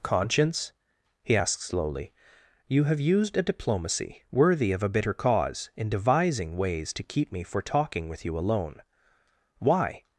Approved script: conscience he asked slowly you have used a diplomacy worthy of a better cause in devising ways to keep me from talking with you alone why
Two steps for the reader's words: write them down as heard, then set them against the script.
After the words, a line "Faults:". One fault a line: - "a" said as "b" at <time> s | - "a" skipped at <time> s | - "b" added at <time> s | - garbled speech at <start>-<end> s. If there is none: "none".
conscience he asked slowly you have used a diplomacy worthy of a bitter cause in devising ways to keep me for talking with you alone why
Faults:
- "better" said as "bitter" at 4.9 s
- "from" said as "for" at 7.4 s